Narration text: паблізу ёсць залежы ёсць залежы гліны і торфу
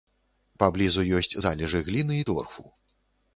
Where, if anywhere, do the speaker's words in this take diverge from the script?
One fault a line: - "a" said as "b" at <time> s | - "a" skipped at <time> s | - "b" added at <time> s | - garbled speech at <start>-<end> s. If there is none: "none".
- "ёсць залежы" skipped at 1.8 s